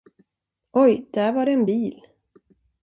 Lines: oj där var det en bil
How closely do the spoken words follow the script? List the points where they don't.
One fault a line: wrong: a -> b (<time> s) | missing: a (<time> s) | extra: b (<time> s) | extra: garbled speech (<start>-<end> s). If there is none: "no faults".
no faults